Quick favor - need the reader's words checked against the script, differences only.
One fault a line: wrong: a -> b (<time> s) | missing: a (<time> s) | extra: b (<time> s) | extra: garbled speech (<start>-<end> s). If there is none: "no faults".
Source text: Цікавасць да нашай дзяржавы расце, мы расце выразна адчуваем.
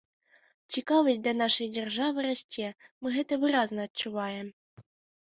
wrong: расце -> гэта (3.2 s)